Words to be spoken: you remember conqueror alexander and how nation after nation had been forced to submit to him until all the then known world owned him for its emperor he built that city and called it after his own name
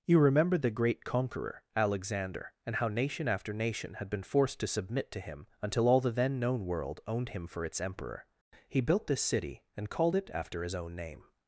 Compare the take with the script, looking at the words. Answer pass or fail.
fail